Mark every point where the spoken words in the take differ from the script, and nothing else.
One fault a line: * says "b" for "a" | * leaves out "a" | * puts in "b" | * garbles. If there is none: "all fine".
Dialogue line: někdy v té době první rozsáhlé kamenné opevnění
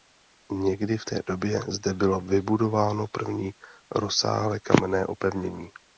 * puts in "zde bylo vybudováno"